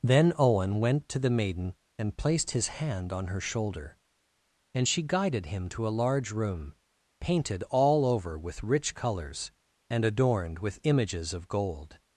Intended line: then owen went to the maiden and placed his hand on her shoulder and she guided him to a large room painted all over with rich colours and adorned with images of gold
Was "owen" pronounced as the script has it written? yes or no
yes